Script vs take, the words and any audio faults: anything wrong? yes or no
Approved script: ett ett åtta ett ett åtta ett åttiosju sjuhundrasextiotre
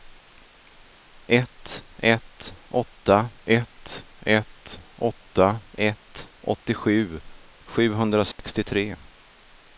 yes